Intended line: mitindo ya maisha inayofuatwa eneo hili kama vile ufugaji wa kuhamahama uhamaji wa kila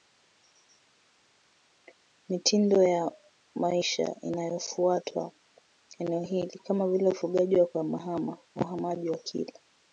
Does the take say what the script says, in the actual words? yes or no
yes